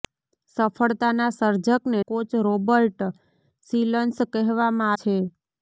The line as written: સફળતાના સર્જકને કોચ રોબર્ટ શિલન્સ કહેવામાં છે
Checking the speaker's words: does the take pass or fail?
pass